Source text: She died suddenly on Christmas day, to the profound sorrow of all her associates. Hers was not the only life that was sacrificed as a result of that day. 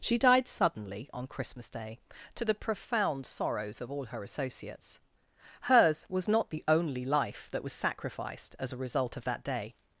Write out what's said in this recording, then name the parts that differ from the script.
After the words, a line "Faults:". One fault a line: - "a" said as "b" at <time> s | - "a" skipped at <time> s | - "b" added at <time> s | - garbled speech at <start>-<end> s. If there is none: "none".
She died suddenly on Christmas day, to the profound sorrows of all her associates. Hers was not the only life that was sacrificed as a result of that day.
Faults:
- "sorrow" said as "sorrows" at 3.2 s